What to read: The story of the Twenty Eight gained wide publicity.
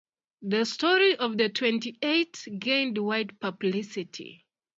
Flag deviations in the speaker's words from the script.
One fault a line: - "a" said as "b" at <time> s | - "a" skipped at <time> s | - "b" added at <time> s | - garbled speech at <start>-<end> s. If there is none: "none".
none